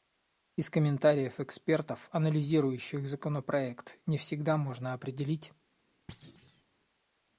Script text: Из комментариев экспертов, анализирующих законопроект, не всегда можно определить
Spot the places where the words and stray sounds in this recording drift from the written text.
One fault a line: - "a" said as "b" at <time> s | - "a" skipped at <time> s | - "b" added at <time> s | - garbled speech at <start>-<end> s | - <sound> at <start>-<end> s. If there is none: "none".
- thud at 6.1-6.6 s